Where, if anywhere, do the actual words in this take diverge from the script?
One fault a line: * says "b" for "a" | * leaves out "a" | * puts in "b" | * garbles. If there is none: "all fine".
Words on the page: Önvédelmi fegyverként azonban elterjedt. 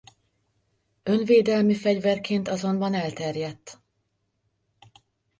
all fine